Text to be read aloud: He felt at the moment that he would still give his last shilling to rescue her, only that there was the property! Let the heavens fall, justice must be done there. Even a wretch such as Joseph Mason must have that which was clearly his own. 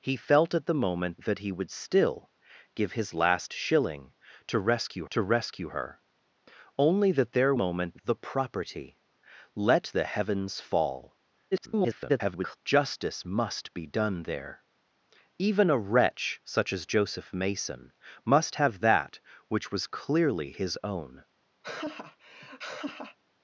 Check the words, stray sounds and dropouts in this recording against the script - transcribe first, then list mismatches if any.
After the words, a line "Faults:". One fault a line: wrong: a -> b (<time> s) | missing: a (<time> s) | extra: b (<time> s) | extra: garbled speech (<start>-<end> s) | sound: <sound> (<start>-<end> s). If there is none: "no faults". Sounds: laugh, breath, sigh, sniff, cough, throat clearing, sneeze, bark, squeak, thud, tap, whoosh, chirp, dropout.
He felt at the moment that he would still give his last shilling to rescue to rescue her, only that there moment the property! Let the heavens fall, [garbled] justice must be done there. Even a wretch such as Joseph Mason must have that which was clearly his own.
Faults:
extra: to rescue (5.1 s)
wrong: was -> moment (7.6 s)
extra: garbled speech (11.5-12.6 s)
sound: laugh (21.6-23.2 s)